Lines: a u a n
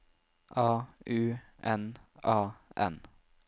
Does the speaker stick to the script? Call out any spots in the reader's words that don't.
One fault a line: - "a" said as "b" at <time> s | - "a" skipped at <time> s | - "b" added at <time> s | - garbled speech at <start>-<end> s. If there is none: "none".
- "n" added at 1.6 s